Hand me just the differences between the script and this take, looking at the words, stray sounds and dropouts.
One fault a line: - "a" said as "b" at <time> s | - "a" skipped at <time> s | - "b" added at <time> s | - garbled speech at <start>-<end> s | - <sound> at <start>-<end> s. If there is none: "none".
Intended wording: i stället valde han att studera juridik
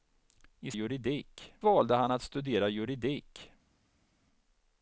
- "stället" said as "juridik" at 0.7 s